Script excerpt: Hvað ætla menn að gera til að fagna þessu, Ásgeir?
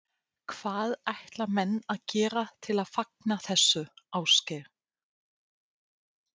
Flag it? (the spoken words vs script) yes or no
no